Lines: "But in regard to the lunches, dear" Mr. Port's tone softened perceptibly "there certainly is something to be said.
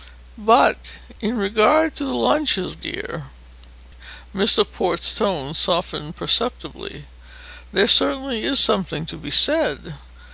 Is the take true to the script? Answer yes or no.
yes